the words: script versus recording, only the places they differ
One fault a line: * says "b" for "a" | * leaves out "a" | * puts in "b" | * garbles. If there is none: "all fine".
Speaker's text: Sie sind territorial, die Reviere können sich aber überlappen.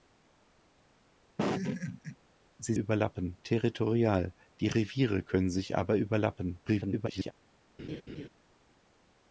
* says "überlappen" for "sind"
* garbles